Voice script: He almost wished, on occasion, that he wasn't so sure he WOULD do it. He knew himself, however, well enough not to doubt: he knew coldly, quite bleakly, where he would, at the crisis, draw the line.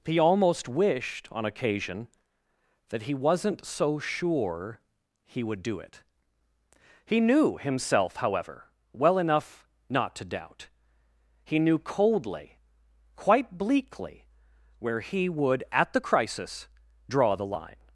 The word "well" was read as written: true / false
true